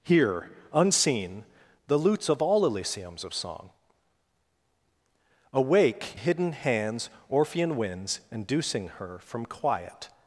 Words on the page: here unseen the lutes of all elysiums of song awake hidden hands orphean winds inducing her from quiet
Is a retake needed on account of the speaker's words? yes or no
no